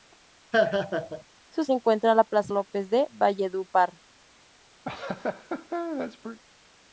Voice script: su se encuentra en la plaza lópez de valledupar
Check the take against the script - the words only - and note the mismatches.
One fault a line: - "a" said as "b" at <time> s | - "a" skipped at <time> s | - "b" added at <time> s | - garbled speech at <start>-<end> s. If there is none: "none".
none